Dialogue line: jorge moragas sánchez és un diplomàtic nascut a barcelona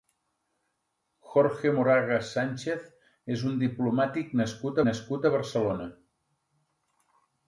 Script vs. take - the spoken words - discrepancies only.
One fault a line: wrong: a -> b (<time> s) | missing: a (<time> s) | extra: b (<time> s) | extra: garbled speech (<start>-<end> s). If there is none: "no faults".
extra: nascut (4.9 s)